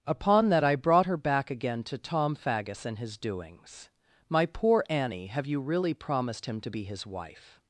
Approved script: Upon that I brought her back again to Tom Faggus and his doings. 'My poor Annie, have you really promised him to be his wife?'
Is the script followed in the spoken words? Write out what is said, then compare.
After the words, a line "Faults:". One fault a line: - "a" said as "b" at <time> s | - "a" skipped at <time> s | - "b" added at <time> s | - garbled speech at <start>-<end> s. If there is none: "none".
Upon that I brought her back again to Tom Faggus and his doings. 'My poor Annie, have you really promised him to be his wife?'
Faults:
none